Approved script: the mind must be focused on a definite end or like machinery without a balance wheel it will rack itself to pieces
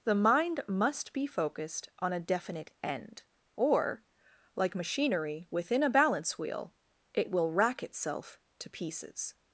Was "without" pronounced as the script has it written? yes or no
no